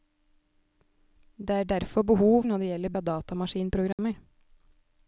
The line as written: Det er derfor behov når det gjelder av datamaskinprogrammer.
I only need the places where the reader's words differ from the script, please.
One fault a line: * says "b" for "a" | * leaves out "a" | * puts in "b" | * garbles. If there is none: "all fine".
all fine